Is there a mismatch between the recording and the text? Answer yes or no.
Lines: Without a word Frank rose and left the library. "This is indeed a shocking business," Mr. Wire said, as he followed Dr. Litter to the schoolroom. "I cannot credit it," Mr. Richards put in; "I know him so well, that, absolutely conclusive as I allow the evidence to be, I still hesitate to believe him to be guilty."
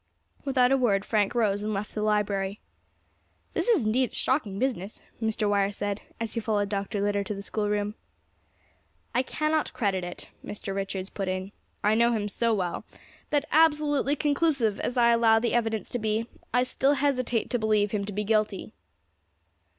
no